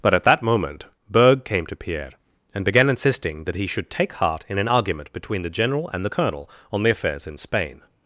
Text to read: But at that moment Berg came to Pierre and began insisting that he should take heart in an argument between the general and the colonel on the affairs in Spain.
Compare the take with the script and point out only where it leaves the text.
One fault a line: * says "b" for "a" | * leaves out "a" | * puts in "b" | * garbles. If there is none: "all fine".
all fine